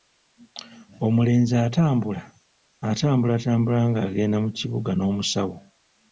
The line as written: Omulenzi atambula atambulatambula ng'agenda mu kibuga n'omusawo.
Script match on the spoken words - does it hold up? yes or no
yes